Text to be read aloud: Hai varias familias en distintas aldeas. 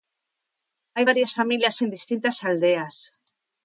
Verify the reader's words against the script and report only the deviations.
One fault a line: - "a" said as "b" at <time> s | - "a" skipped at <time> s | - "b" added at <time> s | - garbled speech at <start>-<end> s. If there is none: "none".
none